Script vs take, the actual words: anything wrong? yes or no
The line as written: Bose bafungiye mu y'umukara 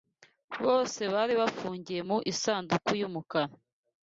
yes